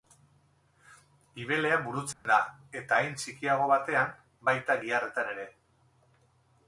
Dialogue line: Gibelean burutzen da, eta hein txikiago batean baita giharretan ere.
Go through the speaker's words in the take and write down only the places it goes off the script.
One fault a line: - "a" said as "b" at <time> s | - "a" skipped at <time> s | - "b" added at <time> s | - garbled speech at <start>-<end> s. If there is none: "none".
none